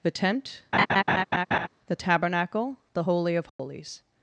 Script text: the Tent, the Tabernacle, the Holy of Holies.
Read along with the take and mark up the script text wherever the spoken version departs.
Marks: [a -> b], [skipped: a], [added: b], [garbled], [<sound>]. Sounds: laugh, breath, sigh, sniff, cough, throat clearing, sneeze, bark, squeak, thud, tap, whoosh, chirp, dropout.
the Tent, [laugh] the Tabernacle, the Holy of Holies. [dropout]